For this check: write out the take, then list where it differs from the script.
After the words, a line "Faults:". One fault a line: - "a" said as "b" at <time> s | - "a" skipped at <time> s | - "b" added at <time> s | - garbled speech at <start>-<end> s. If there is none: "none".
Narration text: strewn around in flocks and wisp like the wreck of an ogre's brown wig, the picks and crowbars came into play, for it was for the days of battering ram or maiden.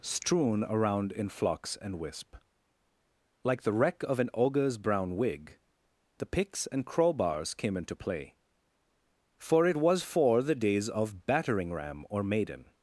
strewn around in flocks and wisp like the wreck of an ogre's brown wig, the picks and crowbars came into play, for it was for the days of battering ram or maiden.
Faults:
none